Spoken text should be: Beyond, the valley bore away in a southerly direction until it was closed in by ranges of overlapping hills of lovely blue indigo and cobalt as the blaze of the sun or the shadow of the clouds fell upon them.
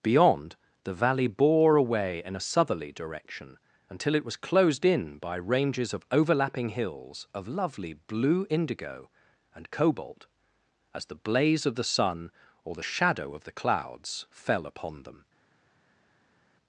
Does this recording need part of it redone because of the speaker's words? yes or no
no